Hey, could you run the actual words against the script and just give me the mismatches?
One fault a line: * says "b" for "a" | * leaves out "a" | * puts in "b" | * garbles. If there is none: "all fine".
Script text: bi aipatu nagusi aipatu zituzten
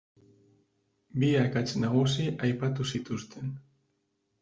* says "akats" for "aipatu"